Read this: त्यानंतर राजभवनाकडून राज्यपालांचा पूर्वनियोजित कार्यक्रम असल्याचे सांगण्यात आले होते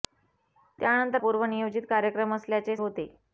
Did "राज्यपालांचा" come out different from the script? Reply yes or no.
yes